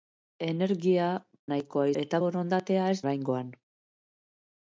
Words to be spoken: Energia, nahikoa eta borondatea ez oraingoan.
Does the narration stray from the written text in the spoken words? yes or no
no